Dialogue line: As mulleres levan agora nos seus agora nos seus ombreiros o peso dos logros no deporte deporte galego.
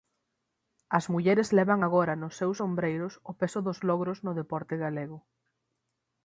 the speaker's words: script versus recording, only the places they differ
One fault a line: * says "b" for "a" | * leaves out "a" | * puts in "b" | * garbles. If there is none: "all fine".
* leaves out "agora nos seus"
* leaves out "deporte"